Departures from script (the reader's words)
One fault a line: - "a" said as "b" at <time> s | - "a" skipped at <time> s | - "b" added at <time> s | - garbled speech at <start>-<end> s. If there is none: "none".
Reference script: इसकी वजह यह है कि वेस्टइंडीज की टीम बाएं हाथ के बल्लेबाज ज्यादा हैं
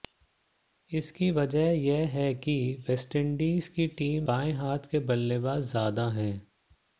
none